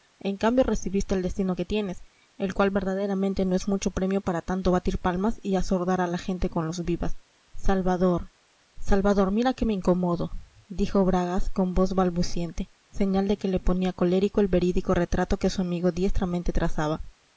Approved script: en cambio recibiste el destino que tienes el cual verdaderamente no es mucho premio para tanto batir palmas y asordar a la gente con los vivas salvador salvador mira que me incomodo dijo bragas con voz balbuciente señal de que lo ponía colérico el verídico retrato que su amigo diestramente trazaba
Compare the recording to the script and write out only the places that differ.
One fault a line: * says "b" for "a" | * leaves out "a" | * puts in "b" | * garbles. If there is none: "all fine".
* says "le" for "lo"